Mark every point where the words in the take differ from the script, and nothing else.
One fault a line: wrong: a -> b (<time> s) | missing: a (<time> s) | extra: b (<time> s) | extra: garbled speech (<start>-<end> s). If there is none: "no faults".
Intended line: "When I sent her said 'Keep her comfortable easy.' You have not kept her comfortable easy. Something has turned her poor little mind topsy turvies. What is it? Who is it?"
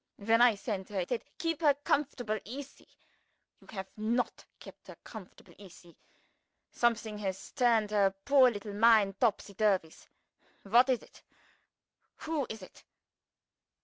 no faults